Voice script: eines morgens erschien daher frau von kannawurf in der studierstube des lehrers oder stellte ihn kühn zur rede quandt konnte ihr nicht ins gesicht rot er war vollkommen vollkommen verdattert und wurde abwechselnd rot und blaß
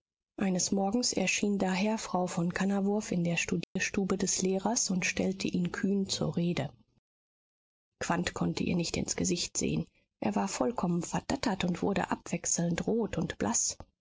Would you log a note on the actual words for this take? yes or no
yes